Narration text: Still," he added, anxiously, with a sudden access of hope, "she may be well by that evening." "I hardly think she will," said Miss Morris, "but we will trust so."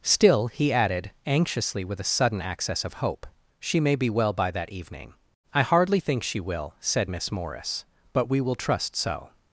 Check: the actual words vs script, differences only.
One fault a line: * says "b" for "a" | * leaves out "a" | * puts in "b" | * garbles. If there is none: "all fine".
all fine